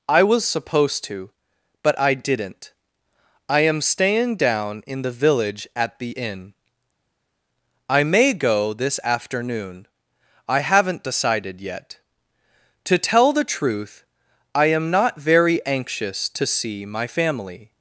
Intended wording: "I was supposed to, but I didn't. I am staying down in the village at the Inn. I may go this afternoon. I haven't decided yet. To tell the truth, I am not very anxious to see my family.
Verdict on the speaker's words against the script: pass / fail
pass